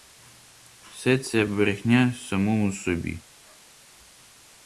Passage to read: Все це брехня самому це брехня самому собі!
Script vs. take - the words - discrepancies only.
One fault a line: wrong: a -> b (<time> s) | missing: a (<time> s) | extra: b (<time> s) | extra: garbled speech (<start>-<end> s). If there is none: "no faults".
missing: це брехня самому (2.7 s)